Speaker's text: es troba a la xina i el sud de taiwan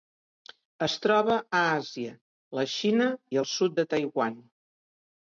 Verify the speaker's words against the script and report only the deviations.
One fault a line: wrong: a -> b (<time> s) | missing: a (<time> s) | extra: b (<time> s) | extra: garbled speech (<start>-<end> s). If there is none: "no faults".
extra: àsia (1.7 s)